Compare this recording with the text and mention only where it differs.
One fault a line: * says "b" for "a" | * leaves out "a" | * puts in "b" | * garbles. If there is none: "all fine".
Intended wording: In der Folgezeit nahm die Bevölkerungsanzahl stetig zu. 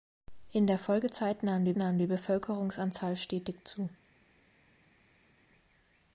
* puts in "nahm die"